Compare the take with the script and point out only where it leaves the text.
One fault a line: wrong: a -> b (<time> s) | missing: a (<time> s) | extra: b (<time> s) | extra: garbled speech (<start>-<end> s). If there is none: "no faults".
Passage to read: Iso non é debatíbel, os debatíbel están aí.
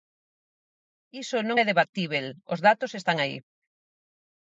wrong: debatíbel -> datos (2.7 s)